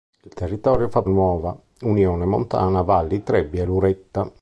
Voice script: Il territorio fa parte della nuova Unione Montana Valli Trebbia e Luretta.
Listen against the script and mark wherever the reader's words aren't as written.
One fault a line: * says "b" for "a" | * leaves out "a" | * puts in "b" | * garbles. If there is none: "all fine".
* leaves out "parte della"